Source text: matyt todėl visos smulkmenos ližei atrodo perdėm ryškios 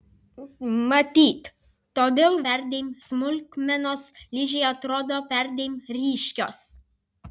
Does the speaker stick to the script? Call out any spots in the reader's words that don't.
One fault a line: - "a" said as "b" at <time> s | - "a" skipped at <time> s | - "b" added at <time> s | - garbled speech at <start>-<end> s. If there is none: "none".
- "visos" said as "perdėm" at 2.5 s